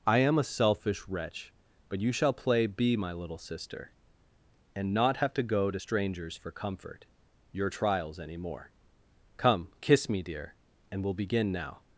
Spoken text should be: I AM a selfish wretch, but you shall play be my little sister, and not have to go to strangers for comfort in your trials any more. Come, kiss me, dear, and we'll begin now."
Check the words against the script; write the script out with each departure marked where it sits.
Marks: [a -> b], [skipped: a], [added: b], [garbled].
I AM a selfish wretch, but you shall play be my little sister, and not have to go to strangers for comfort [skipped: in] your trials any more. Come, kiss me, dear, and we'll begin now."